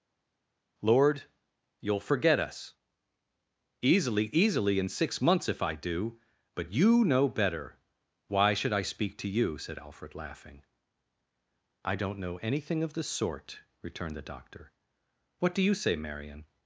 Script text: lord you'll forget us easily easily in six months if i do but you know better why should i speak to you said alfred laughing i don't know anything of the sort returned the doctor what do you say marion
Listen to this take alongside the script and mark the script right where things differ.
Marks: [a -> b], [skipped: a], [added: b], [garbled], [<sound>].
lord you'll forget us easily easily in six months if i do but you know better why should i speak to you said alfred laughing i don't know anything of the sort returned the doctor what do you say marion